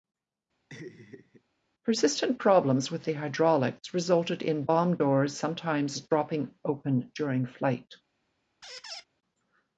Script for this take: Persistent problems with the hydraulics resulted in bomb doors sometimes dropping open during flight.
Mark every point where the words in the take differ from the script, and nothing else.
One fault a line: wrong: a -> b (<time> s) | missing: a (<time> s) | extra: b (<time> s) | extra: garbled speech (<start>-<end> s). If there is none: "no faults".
no faults